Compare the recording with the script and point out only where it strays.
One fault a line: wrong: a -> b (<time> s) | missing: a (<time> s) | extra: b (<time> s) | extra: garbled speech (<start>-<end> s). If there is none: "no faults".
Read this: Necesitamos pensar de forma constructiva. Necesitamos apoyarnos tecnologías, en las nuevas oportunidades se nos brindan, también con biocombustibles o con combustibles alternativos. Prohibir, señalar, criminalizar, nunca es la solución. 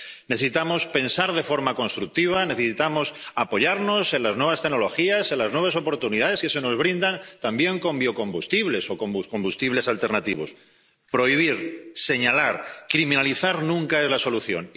extra: en las nuevas (4.1 s)
extra: que (6.4 s)